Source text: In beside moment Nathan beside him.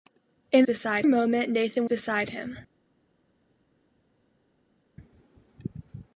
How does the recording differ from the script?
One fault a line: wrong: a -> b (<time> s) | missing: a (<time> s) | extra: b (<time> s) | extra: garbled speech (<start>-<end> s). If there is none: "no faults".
no faults